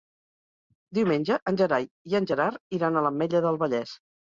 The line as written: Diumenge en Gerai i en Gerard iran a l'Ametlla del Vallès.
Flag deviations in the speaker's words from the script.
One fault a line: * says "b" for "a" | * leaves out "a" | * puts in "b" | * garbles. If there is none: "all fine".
all fine